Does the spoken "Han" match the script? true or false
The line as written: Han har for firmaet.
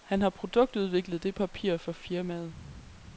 true